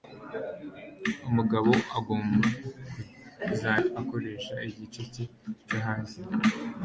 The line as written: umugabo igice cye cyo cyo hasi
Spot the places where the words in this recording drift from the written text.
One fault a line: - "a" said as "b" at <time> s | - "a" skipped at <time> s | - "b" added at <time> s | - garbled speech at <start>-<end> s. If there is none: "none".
- "agomba kuzajya akoresha" added at 2.0 s
- "cyo" skipped at 5.8 s